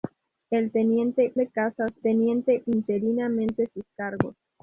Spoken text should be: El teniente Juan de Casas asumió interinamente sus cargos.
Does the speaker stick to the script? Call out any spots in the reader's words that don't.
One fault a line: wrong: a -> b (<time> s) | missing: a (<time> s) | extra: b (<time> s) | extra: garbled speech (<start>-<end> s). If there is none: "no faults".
missing: Juan (1.4 s)
wrong: asumió -> teniente (2.0 s)